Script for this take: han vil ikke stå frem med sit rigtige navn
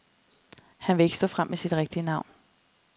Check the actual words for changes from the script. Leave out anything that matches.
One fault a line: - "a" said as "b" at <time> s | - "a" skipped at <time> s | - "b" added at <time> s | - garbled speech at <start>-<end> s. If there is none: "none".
none